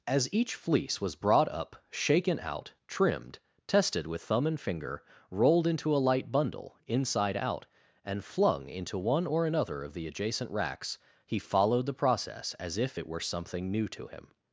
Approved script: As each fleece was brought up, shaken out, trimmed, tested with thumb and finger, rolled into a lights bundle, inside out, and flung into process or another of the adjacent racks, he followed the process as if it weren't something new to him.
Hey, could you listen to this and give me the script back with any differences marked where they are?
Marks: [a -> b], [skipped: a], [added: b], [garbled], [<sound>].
As each fleece was brought up, shaken out, trimmed, tested with thumb and finger, rolled into a [lights -> light] bundle, inside out, and flung into [process -> one] or another of the adjacent racks, he followed the process as if it [weren't -> were] something new to him.